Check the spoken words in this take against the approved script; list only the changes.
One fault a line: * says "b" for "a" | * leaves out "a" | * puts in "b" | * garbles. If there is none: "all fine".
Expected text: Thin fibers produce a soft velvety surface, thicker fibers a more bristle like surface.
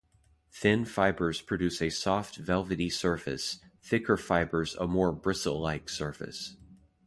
all fine